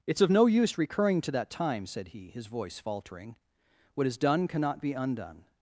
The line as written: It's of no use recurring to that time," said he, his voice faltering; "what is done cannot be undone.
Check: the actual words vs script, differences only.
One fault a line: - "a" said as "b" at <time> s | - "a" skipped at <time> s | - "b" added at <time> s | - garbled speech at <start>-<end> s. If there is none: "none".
none